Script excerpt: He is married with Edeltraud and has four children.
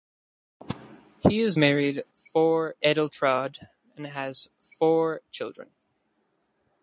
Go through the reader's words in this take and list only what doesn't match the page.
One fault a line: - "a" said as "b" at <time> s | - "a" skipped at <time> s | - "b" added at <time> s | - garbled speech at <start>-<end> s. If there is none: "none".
- "with" said as "four" at 2.1 s